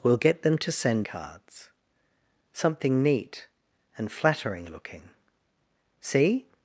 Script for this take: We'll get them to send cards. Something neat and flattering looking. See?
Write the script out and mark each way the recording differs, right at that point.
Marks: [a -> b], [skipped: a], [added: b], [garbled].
We'll get them to send cards. Something neat and flattering looking. See?